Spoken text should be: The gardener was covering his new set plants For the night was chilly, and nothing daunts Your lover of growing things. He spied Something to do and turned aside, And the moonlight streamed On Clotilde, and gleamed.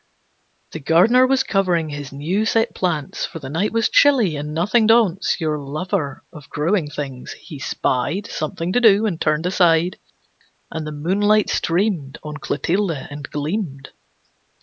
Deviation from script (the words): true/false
false